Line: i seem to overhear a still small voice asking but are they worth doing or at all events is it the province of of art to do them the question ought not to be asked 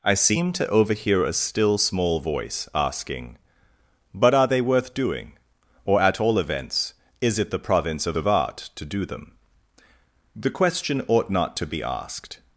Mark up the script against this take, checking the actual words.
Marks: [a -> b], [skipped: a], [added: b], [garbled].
i seem to overhear a still small voice asking but are they worth doing or at all events is it the province of of art to do them the question ought not to be asked